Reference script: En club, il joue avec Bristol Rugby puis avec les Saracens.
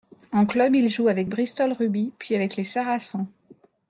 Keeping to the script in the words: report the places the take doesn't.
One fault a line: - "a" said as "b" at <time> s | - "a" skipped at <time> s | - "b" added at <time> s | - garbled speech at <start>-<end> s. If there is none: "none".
none